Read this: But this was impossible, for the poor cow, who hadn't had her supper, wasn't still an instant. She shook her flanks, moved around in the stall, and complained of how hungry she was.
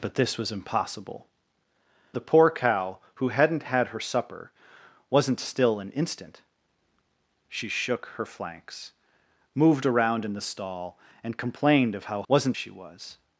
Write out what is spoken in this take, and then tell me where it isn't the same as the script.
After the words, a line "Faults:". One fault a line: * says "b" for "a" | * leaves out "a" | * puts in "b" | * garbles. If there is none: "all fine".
But this was impossible, the poor cow, who hadn't had her supper, wasn't still an instant. She shook her flanks, moved around in the stall, and complained of how wasn't she was.
Faults:
* leaves out "for"
* says "wasn't" for "hungry"